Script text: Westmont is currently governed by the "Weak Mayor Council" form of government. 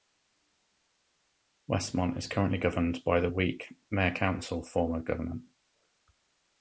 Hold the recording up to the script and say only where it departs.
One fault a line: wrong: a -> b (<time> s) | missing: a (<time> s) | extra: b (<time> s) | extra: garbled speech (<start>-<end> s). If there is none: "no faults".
no faults